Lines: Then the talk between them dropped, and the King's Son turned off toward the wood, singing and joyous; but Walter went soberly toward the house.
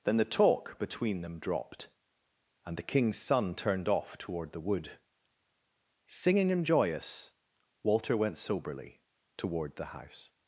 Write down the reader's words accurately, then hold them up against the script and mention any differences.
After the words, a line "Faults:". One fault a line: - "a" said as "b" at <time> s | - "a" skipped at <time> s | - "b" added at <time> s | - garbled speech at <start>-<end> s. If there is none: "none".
Then the talk between them dropped, and the King's Son turned off toward the wood, singing and joyous; Walter went soberly toward the house.
Faults:
- "but" skipped at 7.3 s